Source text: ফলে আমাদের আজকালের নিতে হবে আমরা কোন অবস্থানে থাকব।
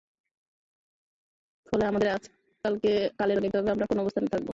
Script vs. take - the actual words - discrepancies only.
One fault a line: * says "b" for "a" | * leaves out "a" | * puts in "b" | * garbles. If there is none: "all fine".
all fine